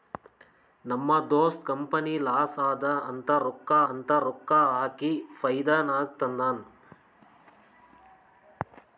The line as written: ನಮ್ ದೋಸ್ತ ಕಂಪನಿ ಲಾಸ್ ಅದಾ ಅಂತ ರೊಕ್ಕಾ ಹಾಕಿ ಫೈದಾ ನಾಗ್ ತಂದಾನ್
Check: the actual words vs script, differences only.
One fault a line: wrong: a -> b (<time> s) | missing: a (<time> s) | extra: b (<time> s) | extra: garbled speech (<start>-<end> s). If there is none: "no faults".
extra: ಅಂತ ರೊಕ್ಕಾ (3.9 s)